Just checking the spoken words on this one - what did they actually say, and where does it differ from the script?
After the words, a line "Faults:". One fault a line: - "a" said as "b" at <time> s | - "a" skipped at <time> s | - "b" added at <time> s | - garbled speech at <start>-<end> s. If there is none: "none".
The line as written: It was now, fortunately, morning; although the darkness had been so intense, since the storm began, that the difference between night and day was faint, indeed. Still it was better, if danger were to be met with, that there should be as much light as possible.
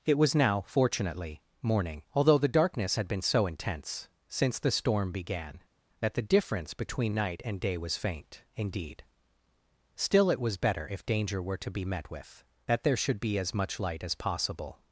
It was now, fortunately, morning; although the darkness had been so intense, since the storm began, that the difference between night and day was faint, indeed. Still it was better, if danger were to be met with, that there should be as much light as possible.
Faults:
none